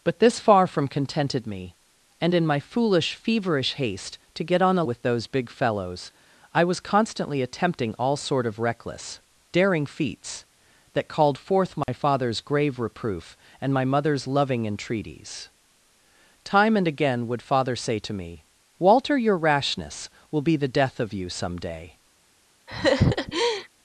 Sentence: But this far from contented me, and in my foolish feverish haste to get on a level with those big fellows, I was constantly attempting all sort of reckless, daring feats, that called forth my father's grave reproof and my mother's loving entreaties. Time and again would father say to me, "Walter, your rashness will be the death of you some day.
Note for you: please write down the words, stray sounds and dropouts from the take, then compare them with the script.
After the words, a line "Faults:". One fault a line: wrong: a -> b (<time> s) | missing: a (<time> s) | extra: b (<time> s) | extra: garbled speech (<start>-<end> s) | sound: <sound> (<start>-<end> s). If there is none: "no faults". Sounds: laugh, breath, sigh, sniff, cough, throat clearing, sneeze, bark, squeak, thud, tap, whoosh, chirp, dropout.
But this far from contented me, and in my foolish feverish haste to get on a with those big fellows, I was constantly attempting all sort of reckless, daring feats, that called forth my father's grave reproof and my mother's loving entreaties. Time and again would father say to me, "Walter, your rashness will be the death of you some day.
Faults:
missing: level (4.8 s)
sound: dropout (11.8-11.9 s)
sound: laugh (22.7-23.7 s)